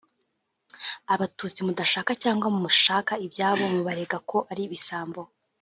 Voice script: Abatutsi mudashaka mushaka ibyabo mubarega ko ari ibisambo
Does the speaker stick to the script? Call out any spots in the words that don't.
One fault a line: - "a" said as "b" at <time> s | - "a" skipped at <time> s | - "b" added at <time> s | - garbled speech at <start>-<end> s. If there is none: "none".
- "cyangwa" added at 2.2 s